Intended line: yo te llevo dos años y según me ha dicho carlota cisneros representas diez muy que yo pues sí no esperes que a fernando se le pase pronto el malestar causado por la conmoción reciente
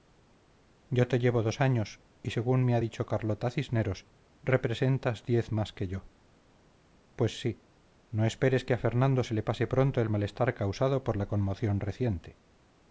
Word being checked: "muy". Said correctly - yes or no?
no